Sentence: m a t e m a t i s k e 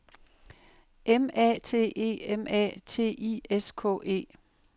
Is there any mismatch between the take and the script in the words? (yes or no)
no